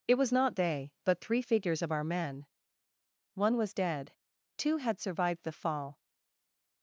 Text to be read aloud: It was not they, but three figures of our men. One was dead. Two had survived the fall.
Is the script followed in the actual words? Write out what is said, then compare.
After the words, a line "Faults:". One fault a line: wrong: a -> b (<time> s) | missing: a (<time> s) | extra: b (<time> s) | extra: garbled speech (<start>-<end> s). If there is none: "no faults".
It was not they, but three figures of our men. One was dead. Two had survived the fall.
Faults:
no faults